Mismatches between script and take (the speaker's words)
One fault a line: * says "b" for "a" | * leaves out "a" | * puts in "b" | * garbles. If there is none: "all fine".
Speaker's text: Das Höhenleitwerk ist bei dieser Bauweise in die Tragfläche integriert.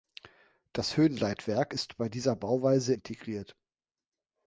* leaves out "in die Tragfläche"